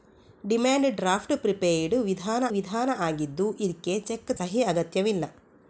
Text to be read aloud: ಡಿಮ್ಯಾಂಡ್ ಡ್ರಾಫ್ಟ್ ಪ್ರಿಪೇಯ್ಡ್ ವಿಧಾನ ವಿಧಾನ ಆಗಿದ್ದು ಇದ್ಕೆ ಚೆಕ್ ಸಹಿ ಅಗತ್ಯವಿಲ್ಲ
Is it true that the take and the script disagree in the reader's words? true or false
false